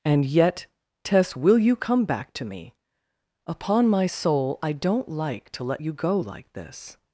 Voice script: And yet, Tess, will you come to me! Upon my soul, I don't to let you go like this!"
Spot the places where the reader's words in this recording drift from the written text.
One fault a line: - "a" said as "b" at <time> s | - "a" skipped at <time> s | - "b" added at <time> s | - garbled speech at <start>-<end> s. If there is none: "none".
- "back" added at 2.0 s
- "like" added at 5.1 s